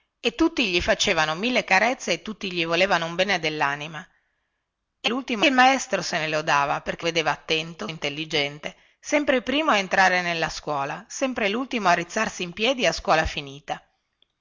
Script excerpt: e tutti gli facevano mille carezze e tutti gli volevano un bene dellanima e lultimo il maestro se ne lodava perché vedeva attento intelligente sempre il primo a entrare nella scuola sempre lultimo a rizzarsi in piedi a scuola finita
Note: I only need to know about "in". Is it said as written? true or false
true